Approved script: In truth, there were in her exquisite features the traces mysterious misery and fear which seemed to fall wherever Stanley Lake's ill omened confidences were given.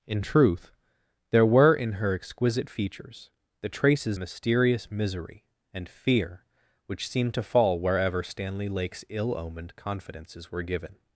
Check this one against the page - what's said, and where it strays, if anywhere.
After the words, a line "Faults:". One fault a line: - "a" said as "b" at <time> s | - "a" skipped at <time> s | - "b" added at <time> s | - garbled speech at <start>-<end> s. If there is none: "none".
In truth, there were in her exquisite features the traces mysterious misery and fear which seemed to fall wherever Stanley Lake's ill omened confidences were given.
Faults:
none